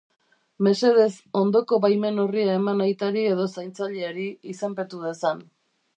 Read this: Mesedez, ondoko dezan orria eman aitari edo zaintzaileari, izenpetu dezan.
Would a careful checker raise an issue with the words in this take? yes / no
yes